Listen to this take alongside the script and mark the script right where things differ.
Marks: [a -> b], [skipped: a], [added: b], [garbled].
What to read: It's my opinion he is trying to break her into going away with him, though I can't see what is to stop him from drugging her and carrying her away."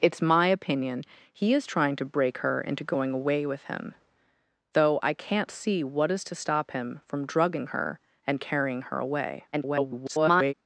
It's my opinion he is trying to break her into going away with him, though I can't see what is to stop him from drugging her and carrying her away." [garbled]